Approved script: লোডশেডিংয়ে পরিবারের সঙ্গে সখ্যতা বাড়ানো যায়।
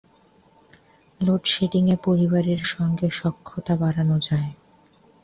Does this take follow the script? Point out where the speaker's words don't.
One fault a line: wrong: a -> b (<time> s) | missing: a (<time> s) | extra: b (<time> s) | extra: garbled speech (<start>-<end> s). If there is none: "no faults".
no faults